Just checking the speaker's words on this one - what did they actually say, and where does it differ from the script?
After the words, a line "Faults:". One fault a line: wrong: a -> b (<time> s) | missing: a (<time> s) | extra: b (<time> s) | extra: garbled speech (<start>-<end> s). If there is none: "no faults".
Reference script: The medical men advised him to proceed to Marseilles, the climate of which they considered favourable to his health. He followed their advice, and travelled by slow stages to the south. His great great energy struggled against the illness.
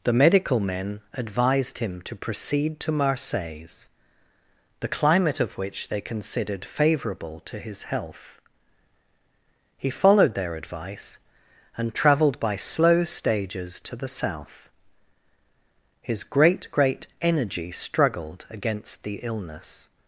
The medical men advised him to proceed to Marseilles, the climate of which they considered favourable to his health. He followed their advice, and travelled by slow stages to the south. His great great energy struggled against the illness.
Faults:
no faults